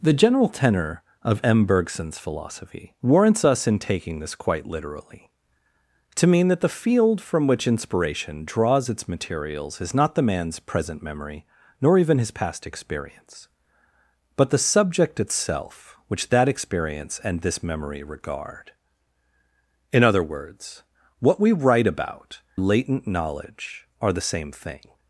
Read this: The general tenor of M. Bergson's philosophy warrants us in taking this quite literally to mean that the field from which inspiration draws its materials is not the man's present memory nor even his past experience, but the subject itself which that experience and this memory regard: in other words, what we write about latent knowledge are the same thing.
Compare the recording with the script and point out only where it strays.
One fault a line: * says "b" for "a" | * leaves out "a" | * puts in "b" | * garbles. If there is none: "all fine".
all fine